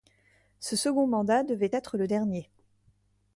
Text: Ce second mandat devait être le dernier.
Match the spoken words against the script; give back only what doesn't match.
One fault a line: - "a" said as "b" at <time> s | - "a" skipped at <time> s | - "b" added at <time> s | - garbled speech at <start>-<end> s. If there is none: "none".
none